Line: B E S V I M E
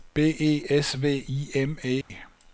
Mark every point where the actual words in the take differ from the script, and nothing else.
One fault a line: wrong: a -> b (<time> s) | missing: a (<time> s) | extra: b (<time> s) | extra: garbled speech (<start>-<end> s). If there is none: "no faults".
no faults